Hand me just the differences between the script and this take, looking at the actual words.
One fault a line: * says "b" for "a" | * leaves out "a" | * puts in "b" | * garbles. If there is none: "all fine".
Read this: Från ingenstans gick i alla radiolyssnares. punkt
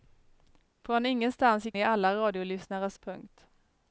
all fine